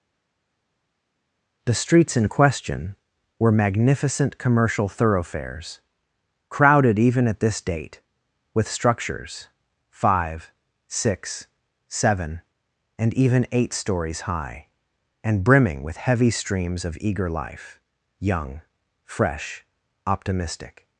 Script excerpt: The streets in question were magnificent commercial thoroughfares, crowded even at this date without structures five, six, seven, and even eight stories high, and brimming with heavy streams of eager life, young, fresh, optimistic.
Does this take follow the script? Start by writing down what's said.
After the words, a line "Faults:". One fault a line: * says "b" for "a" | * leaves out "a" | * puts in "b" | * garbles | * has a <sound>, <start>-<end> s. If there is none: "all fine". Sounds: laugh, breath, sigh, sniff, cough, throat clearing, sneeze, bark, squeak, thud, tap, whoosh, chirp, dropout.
The streets in question were magnificent commercial thoroughfares, crowded even at this date with structures five, six, seven, and even eight stories high, and brimming with heavy streams of eager life, young, fresh, optimistic.
Faults:
* says "with" for "without"